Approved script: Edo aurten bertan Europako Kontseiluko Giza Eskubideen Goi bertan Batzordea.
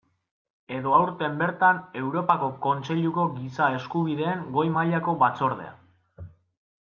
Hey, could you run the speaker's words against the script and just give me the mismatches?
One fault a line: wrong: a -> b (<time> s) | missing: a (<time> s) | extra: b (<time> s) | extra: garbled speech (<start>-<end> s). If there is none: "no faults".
wrong: bertan -> mailako (4.7 s)